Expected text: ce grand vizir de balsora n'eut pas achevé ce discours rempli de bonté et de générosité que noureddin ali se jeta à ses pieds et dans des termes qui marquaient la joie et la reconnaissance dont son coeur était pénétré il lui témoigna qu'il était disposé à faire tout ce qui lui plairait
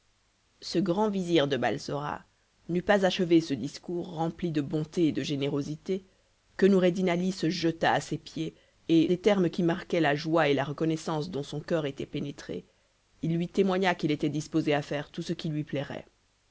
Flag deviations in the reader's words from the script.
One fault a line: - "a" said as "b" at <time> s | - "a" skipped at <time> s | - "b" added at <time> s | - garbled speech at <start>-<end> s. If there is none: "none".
- "dans" skipped at 9.1 s